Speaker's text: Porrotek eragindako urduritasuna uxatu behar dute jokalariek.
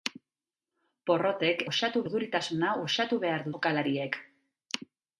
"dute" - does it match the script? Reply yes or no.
no